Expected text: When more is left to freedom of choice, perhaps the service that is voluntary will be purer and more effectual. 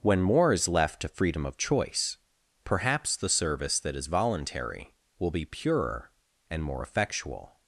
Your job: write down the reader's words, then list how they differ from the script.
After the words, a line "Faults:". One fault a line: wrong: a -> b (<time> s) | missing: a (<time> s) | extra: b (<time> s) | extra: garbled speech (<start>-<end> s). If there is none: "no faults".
When more is left to freedom of choice, perhaps the service that is voluntary will be purer and more effectual.
Faults:
no faults